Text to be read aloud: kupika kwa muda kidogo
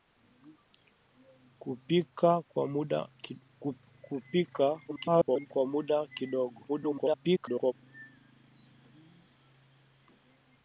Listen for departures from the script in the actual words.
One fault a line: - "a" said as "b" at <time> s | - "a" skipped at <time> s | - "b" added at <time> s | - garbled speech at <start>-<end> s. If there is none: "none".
- garbled speech at 4.9-5.5 s
- garbled speech at 6.7-7.7 s